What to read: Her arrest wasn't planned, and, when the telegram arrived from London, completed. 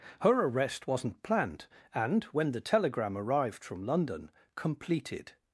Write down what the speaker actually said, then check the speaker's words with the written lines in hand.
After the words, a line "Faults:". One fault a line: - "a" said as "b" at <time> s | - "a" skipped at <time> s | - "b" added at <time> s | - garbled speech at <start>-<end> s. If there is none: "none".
Her arrest wasn't planned, and, when the telegram arrived from London, completed.
Faults:
none